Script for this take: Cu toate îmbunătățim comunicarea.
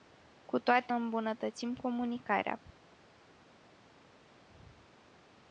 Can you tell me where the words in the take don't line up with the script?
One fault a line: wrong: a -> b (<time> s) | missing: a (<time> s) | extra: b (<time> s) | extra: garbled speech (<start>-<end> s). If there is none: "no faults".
no faults